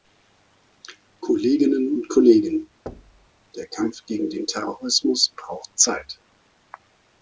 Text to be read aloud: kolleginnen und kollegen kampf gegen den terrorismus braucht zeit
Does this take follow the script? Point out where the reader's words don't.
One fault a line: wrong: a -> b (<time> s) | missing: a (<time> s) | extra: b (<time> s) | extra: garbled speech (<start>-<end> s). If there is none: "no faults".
extra: der (3.5 s)